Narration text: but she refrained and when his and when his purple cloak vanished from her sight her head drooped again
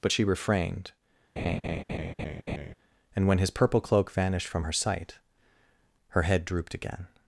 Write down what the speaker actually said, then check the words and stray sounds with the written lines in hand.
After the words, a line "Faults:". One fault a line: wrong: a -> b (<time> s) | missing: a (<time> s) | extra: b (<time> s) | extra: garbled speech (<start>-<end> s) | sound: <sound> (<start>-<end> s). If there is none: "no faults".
but she refrained and when his purple cloak vanished from her sight her head drooped again
Faults:
sound: laugh (1.4-2.7 s)
missing: and when his (3.5 s)